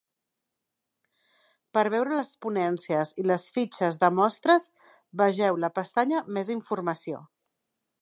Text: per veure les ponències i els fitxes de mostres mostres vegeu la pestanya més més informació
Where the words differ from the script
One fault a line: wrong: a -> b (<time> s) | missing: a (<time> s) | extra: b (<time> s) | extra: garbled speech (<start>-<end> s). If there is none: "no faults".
wrong: els -> les (3.3 s)
missing: mostres (4.7 s)
missing: més (6.6 s)